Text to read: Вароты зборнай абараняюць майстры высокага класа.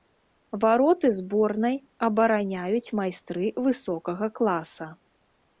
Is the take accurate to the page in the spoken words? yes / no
yes